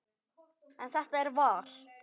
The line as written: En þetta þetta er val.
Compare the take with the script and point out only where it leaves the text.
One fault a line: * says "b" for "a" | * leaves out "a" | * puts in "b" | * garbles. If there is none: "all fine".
* leaves out "þetta"